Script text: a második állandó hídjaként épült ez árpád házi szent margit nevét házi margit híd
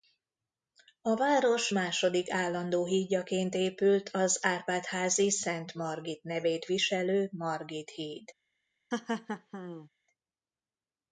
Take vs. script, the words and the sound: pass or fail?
fail